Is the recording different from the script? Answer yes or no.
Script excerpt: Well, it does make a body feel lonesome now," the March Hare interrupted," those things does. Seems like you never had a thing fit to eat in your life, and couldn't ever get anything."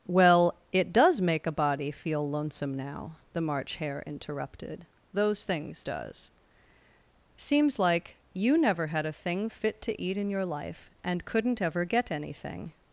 no